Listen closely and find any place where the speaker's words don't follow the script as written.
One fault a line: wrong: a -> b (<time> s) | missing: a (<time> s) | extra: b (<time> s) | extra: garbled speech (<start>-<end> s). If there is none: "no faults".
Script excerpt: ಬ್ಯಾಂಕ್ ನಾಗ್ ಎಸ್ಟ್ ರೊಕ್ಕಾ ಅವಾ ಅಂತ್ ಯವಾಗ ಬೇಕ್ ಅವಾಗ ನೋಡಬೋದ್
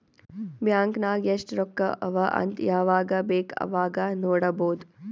no faults